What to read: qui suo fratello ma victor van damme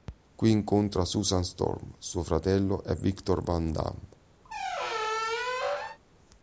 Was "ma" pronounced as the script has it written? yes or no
no